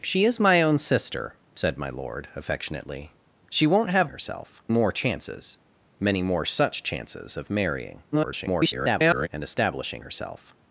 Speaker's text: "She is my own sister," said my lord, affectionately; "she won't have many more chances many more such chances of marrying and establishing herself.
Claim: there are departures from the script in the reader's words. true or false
true